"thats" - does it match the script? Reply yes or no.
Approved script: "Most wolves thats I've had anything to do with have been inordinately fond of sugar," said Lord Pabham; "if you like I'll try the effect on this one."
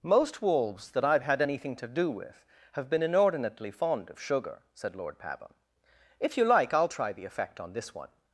no